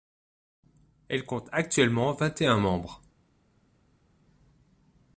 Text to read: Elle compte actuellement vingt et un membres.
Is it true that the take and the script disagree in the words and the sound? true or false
false